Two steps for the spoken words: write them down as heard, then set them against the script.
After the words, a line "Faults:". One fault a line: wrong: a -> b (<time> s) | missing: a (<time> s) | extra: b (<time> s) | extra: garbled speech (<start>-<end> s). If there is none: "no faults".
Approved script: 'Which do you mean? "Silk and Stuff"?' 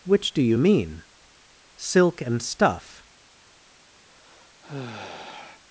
'Which do you mean? "Silk and Stuff"?'
Faults:
no faults